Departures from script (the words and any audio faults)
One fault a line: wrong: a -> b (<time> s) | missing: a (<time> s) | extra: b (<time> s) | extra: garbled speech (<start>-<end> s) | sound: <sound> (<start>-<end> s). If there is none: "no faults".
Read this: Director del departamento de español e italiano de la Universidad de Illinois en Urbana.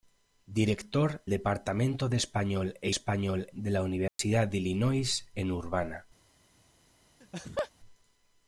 missing: del (1.2 s)
wrong: italiano -> español (2.9 s)
sound: dropout (4.1-4.2 s)
sound: laugh (7.2-7.7 s)